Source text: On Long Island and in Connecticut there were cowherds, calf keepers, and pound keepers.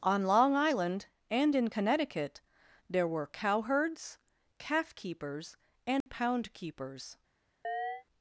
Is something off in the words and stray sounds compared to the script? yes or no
yes